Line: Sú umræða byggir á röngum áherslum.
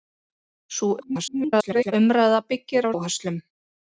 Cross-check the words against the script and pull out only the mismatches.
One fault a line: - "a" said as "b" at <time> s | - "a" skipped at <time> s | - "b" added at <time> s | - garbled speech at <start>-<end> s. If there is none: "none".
- garbled speech at 1.0-1.9 s
- "röngum" skipped at 2.9 s